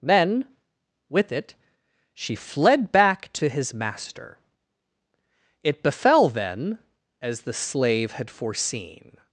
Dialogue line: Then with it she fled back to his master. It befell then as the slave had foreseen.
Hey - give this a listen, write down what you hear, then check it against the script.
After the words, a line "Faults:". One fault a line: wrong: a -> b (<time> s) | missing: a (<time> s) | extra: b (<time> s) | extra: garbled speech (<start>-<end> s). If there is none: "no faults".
Then with it she fled back to his master. It befell then as the slave had foreseen.
Faults:
no faults